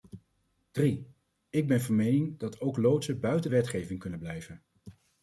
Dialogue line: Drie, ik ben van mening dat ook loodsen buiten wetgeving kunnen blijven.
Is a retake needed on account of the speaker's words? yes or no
no